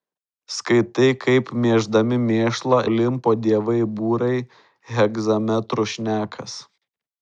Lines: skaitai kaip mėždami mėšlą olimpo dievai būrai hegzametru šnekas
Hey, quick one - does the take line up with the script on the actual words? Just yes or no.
yes